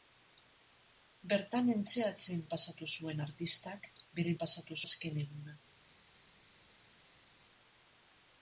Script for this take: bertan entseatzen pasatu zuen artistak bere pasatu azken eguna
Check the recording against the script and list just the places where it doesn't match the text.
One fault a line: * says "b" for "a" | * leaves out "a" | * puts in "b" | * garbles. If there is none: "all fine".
all fine